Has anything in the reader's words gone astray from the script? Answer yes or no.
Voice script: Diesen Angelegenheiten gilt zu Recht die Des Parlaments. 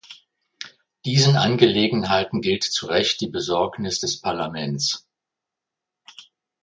yes